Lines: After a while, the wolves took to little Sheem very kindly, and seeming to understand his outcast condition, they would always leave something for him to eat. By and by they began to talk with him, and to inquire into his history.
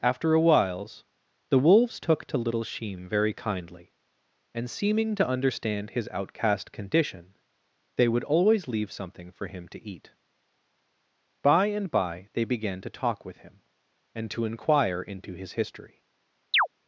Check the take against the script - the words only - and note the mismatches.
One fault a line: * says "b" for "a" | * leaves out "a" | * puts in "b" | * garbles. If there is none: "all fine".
* says "whiles" for "while"